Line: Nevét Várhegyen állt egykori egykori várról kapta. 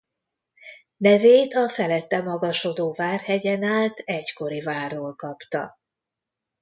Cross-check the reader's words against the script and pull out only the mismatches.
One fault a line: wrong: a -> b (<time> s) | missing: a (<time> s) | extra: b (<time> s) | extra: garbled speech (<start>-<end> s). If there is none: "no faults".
extra: a felette magasodó (1.5 s)
missing: egykori (4.6 s)